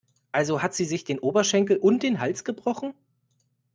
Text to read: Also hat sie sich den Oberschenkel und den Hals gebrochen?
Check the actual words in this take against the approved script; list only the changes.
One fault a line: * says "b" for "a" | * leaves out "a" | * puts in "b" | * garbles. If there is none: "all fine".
all fine